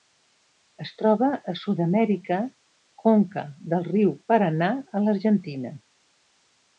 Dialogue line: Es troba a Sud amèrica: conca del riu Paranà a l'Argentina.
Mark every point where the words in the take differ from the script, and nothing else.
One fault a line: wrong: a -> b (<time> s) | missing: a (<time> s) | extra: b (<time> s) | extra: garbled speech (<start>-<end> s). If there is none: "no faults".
no faults